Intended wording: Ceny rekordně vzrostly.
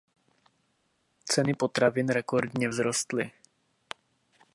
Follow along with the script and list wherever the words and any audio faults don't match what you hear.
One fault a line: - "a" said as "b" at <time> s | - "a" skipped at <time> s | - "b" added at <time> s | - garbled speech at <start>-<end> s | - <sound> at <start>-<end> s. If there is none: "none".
- "potravin" added at 1.5 s